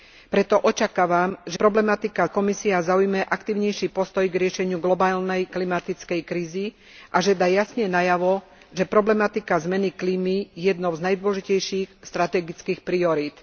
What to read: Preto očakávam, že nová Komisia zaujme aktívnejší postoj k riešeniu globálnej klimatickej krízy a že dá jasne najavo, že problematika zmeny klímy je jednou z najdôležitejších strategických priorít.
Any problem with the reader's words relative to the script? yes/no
yes